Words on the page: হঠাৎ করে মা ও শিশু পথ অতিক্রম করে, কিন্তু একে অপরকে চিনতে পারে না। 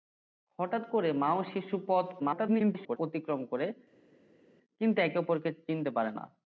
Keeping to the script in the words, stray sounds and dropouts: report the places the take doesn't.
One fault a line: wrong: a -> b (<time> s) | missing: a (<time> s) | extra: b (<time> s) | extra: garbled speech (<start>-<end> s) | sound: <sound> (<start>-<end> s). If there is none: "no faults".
extra: garbled speech (2.2-3.0 s)